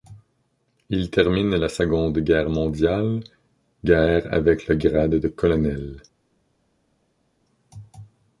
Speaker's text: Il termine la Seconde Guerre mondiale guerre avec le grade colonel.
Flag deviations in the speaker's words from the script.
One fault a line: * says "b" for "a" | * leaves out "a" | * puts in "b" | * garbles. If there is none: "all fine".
* puts in "de"